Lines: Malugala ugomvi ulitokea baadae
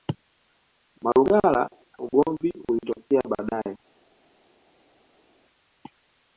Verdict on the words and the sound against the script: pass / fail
pass